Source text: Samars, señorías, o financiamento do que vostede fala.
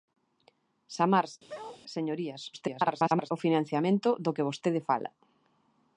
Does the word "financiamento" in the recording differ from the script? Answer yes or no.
no